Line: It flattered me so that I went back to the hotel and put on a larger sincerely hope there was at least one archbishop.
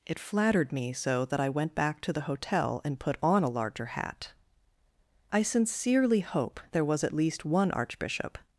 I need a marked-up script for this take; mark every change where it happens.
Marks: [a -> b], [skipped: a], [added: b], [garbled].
It flattered me so that I went back to the hotel and put on a larger [added: hat I] sincerely hope there was at least one archbishop.